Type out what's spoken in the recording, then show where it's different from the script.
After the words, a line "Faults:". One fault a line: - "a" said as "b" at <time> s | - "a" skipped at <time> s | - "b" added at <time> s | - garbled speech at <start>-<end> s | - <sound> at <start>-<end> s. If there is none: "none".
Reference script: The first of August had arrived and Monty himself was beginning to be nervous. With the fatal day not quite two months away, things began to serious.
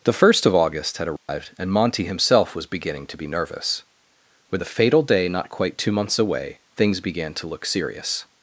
The first of August had arrived and Monty himself was beginning to be nervous. With the fatal day not quite two months away, things began to look serious.
Faults:
- dropout at 1.2-1.3 s
- "look" added at 7.5 s